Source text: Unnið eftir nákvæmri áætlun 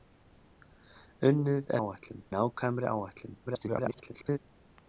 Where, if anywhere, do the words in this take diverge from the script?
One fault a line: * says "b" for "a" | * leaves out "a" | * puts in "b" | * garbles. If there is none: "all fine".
* says "áætlun" for "eftir"
* garbles